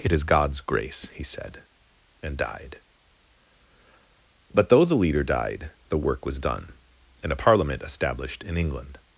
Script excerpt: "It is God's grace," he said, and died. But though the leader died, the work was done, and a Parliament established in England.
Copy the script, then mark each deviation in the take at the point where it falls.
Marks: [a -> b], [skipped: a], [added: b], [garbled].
"It is God's grace," he said, and died. But though the leader died, the work was done, and a Parliament established in England.